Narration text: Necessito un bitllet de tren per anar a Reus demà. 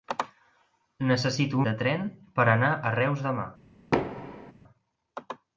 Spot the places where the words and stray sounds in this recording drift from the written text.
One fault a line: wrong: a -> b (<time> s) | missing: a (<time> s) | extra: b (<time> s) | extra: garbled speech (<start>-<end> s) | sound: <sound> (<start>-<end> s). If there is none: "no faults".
missing: un bitllet (1.6 s)
sound: thud (3.9-4.5 s)